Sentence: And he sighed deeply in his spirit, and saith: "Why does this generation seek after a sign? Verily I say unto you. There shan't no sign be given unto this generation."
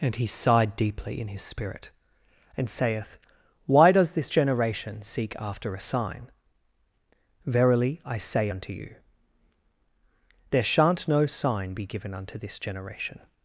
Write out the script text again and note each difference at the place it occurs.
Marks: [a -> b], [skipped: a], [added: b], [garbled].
And he sighed deeply in his spirit, and saith: "Why does this generation seek after a sign? Verily I say unto you. There shan't no sign be given unto this generation."